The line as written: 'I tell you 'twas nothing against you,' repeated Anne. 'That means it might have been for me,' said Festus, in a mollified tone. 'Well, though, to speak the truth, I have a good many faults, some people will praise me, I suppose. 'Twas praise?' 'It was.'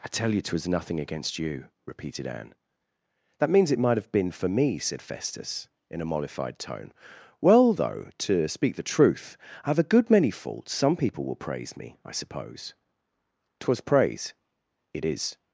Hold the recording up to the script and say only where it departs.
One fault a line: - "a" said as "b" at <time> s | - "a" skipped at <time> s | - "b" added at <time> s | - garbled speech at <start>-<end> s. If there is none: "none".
- "was" said as "is" at 15.0 s